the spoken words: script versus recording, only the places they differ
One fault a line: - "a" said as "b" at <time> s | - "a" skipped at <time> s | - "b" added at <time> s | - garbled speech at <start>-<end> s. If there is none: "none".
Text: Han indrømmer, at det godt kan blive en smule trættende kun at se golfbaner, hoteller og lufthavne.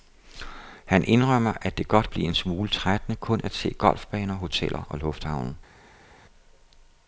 - "kan" skipped at 2.1 s